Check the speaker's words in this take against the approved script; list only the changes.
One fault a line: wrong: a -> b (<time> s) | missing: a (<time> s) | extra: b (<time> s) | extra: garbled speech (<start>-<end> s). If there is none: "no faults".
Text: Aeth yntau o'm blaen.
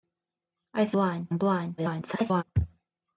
wrong: yntau -> blaen (1.0 s)
extra: garbled speech (1.8-2.4 s)